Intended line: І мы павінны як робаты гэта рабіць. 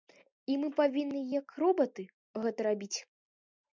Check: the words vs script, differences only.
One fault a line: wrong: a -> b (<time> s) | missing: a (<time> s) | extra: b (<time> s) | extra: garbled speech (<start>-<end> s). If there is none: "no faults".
no faults